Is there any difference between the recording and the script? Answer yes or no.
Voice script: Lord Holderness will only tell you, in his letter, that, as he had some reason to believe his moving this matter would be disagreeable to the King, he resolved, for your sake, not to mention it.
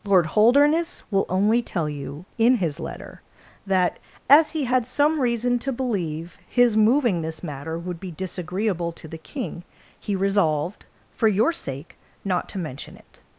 no